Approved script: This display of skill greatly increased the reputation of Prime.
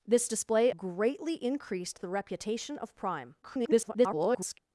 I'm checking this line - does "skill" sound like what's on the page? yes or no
no